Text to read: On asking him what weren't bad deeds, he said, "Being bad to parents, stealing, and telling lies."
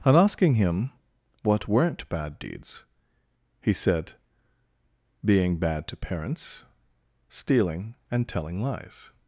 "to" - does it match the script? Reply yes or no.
yes